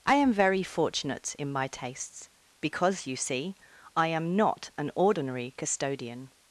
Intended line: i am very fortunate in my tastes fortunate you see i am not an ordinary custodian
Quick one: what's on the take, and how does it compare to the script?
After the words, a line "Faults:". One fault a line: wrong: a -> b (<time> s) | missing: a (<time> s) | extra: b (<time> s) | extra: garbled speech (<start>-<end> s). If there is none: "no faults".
i am very fortunate in my tastes because you see i am not an ordinary custodian
Faults:
wrong: fortunate -> because (2.6 s)